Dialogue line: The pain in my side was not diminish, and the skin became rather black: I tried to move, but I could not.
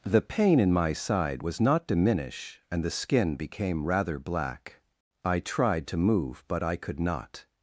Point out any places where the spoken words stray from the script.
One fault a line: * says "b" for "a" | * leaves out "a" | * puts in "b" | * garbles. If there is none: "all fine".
all fine